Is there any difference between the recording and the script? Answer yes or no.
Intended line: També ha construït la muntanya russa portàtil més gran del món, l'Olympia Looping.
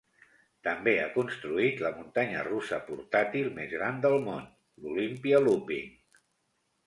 no